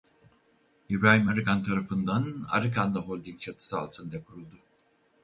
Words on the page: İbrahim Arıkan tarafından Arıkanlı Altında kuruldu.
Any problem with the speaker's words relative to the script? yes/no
yes